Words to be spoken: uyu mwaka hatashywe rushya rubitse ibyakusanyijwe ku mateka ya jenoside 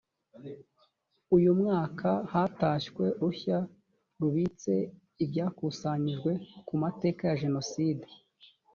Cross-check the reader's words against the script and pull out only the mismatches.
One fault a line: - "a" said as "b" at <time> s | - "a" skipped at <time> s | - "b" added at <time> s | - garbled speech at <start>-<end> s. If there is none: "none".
none